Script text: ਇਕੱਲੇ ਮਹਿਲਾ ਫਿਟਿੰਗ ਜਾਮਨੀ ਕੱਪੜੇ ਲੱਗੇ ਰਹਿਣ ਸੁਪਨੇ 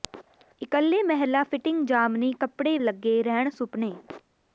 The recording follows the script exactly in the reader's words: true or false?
true